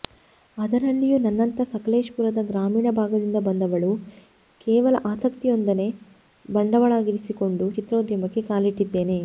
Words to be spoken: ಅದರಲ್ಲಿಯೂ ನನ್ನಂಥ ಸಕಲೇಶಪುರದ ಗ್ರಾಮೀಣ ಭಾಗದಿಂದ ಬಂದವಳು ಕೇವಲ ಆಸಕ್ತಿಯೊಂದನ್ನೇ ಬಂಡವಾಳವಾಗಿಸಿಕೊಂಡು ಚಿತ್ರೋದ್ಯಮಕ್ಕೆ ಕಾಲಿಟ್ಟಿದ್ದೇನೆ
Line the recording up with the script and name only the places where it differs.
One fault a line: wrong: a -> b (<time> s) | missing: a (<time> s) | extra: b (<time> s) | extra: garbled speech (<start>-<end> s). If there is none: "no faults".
no faults